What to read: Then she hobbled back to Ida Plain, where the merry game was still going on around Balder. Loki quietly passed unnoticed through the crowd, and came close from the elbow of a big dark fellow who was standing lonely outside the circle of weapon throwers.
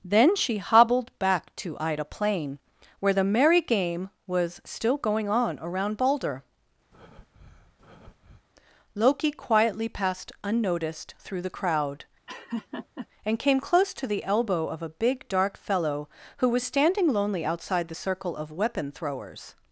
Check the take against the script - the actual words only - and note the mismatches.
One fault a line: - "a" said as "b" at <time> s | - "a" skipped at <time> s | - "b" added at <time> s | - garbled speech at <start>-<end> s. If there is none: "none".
- "from" said as "to" at 13.9 s